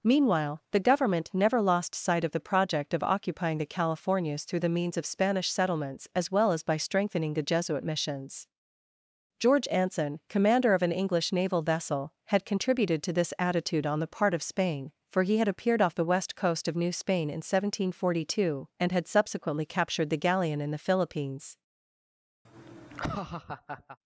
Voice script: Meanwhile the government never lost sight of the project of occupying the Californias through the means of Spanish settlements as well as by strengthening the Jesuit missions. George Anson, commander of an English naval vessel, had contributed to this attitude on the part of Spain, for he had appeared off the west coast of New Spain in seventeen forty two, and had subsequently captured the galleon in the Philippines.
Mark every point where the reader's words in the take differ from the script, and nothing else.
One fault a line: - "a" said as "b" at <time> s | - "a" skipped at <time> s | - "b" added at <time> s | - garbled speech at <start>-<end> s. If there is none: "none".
none